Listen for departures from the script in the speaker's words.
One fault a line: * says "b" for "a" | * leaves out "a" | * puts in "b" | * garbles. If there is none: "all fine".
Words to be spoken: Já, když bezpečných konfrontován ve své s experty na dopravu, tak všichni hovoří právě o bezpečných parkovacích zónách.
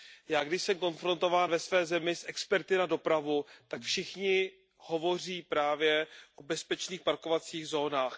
* says "jsem" for "bezpečných"
* puts in "zemi"